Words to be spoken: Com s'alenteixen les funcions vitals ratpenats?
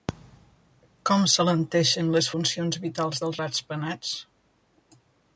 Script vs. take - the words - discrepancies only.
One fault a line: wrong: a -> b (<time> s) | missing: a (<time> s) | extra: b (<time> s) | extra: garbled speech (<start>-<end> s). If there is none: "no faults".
extra: dels (3.2 s)